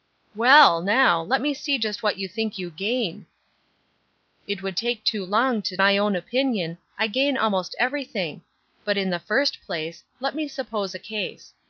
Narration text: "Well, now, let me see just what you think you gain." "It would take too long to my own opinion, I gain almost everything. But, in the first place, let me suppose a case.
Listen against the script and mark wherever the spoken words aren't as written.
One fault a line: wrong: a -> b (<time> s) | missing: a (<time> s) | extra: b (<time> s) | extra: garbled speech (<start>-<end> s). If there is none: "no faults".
no faults